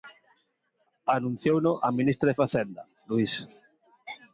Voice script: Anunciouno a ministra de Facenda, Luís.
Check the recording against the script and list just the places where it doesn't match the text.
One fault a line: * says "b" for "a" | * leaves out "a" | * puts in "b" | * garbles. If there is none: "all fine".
all fine